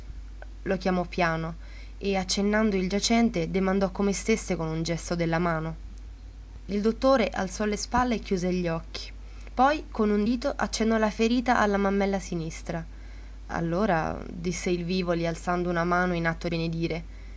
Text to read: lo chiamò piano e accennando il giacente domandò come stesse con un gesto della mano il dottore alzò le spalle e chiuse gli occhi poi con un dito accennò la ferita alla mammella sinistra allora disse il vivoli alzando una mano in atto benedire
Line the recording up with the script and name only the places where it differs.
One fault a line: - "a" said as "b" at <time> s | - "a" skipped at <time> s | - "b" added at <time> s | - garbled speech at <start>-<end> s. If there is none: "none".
none